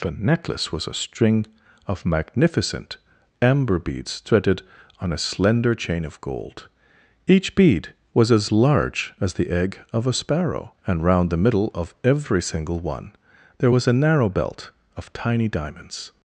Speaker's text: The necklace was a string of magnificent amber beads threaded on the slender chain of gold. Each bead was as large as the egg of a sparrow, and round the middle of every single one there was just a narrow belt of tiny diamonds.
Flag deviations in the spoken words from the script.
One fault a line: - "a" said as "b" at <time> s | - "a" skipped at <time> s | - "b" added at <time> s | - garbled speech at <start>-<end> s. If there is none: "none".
- "the" said as "a" at 5.1 s
- "just" skipped at 13.9 s